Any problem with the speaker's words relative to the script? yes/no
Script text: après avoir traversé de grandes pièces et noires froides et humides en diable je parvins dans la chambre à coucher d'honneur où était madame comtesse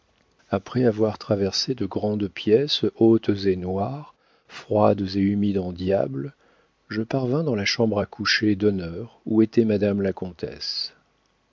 yes